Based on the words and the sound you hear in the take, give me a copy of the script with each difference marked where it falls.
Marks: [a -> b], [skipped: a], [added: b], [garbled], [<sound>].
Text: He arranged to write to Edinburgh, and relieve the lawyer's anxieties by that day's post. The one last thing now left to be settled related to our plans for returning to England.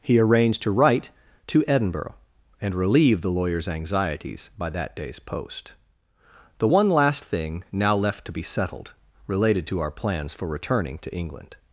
He arranged to write to Edinburgh, and relieve the lawyer's anxieties by that day's post. The one last thing now left to be settled related to our plans for returning to England.